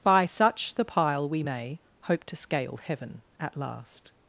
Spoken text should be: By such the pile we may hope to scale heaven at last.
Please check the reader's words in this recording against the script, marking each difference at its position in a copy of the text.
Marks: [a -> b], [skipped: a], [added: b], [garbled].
By such the pile we may hope to scale heaven at last.